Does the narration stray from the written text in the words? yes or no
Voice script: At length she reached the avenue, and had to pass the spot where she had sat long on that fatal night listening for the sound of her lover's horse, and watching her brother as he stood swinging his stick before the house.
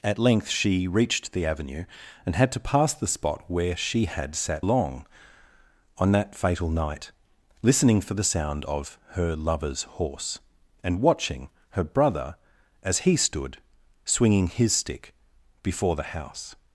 no